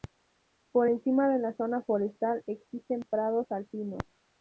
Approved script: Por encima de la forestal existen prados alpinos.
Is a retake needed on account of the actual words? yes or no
yes